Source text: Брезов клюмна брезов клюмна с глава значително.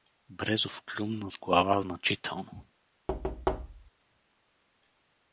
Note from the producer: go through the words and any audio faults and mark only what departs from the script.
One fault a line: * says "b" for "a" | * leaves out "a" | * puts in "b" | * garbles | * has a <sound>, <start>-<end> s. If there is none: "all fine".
* leaves out "брезов клюмна"
* has a thud, 3.1-3.9 s